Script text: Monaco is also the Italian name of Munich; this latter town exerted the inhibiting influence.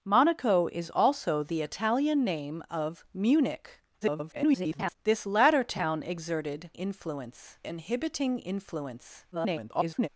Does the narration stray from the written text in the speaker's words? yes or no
yes